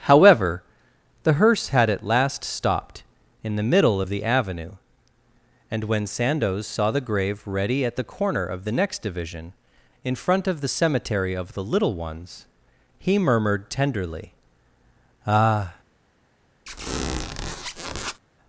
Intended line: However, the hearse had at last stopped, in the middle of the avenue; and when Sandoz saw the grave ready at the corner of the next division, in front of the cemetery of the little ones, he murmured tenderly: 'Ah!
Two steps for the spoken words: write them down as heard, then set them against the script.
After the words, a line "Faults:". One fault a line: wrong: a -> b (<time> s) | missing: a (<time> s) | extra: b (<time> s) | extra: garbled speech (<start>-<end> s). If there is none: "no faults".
However, the hearse had at last stopped, in the middle of the avenue; and when Sandoz saw the grave ready at the corner of the next division, in front of the cemetery of the little ones, he murmured tenderly: 'Ah!
Faults:
no faults